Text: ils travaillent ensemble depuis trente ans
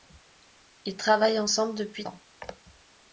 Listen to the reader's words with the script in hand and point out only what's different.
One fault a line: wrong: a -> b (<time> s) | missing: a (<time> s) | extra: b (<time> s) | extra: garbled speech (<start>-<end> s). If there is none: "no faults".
missing: trente (2.1 s)